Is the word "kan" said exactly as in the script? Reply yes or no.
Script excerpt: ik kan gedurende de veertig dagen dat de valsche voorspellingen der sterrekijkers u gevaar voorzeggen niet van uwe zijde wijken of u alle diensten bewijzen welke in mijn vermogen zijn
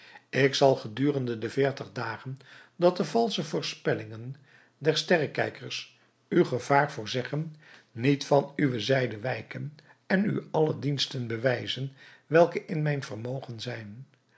no